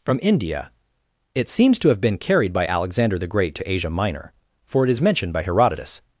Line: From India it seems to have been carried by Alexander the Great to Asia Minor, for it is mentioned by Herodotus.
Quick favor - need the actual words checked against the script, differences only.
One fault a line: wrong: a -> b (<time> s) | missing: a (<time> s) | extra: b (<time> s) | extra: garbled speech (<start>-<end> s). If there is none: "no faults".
no faults